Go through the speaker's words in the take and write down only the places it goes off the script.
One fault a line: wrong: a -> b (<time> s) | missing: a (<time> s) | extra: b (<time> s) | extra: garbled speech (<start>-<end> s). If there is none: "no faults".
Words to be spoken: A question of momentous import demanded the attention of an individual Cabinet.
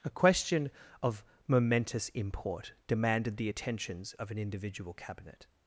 wrong: attention -> attentions (3.5 s)